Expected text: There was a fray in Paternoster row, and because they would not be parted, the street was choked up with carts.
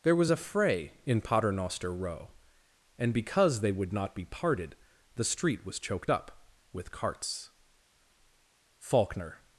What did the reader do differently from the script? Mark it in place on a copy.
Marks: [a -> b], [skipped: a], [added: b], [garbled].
There was a fray in Paternoster row, and because they would not be parted, the street was choked up with carts. [added: FAULKNER]